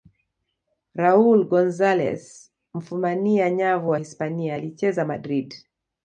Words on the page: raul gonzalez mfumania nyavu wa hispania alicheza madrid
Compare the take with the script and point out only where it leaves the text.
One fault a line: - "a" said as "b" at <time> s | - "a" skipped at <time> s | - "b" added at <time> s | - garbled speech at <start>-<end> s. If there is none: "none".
none